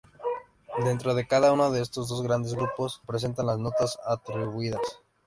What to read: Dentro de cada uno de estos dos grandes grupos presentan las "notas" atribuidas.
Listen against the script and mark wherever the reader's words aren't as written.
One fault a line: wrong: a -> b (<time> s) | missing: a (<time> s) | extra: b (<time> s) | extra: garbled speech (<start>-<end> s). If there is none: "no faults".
no faults